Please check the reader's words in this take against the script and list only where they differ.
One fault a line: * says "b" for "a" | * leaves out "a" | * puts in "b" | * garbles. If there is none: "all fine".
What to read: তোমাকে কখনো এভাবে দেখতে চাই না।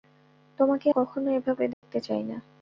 all fine